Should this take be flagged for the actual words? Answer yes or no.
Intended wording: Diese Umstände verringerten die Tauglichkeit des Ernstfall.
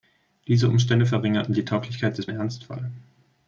no